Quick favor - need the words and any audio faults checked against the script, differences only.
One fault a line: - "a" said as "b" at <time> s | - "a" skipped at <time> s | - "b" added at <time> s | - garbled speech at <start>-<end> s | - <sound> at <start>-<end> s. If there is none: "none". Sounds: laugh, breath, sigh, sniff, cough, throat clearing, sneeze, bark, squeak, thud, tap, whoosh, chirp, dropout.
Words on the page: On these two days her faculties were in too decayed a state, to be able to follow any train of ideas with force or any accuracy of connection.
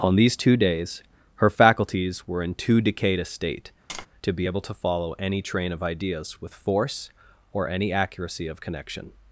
- tap at 3.9-4.1 s